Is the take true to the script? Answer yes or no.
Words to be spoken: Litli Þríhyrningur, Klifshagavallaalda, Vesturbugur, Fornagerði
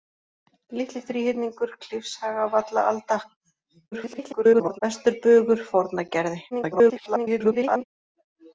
no